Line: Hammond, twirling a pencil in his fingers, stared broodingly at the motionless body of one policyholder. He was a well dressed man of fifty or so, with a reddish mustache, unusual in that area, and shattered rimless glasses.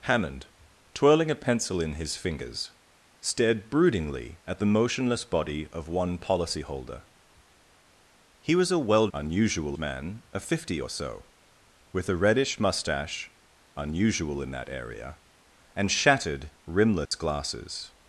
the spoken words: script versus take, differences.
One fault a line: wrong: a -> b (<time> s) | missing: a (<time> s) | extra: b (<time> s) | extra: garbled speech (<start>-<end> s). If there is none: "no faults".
wrong: dressed -> unusual (9.1 s)